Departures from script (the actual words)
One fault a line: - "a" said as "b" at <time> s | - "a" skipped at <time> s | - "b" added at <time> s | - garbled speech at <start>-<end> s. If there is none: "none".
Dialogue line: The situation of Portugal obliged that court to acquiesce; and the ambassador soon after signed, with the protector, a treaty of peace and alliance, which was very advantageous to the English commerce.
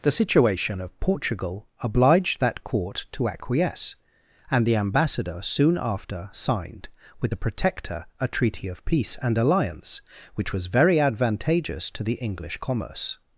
none